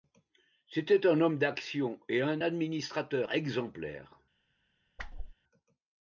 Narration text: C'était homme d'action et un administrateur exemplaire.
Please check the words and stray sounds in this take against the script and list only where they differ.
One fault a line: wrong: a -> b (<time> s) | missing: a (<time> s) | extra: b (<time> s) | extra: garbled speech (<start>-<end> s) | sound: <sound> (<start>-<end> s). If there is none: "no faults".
extra: un (1.1 s)
sound: whoosh (5.0-5.3 s)